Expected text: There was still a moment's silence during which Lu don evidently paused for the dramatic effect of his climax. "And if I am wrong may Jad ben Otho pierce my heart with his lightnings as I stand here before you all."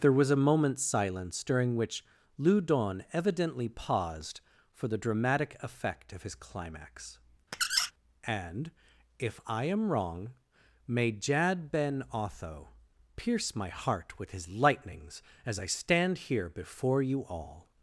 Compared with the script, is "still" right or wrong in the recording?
wrong